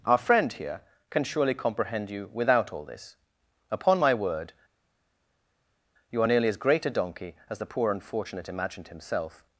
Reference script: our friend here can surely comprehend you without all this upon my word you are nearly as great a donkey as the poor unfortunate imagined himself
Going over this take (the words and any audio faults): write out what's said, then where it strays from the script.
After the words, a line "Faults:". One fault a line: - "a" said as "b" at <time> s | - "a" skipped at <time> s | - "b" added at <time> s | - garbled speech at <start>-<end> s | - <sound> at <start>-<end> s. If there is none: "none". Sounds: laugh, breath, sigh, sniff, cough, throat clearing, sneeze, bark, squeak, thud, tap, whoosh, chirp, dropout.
our friend here can surely comprehend you without all this upon my word you are nearly as great a donkey as the poor unfortunate imagined himself
Faults:
none